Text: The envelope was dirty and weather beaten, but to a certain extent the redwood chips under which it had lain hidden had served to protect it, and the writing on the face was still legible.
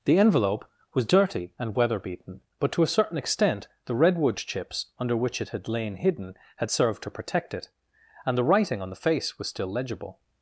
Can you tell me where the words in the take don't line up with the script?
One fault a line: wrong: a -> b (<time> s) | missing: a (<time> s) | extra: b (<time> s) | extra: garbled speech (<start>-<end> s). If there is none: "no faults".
no faults